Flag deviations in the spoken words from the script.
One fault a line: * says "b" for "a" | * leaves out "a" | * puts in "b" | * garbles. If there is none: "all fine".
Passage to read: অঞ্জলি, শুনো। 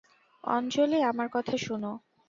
* puts in "আমার কথা"